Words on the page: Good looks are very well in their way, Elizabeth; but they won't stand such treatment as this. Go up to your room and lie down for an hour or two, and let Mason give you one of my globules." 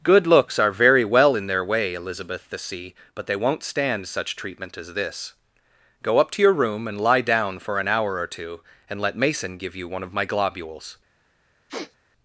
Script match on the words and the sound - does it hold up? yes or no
no